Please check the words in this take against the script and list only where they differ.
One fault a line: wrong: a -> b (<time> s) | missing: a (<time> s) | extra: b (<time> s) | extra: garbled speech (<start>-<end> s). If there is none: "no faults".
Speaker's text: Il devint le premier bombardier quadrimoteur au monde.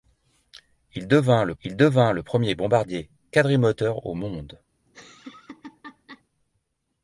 extra: il devint le (1.6 s)